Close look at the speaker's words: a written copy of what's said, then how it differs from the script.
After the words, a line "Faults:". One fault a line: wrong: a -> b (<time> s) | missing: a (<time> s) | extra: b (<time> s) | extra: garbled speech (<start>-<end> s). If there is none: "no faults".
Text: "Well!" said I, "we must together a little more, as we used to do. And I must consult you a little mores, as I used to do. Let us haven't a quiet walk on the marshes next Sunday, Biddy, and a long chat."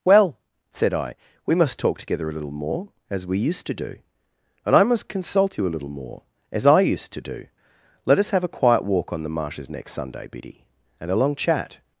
"Well!" said I, "we must talk together a little more, as we used to do. And I must consult you a little more, as I used to do. Let us have a quiet walk on the marshes next Sunday, Biddy, and a long chat."
Faults:
extra: talk (1.8 s)
wrong: mores -> more (5.9 s)
wrong: haven't -> have (8.3 s)